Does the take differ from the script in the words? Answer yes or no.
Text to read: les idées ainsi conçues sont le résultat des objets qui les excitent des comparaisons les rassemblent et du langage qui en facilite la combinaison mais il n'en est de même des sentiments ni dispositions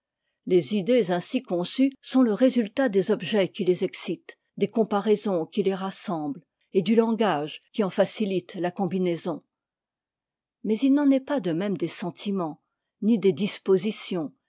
yes